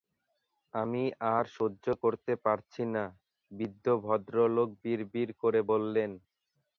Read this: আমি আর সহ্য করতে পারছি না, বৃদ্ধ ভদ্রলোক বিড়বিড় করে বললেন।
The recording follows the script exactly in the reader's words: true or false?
true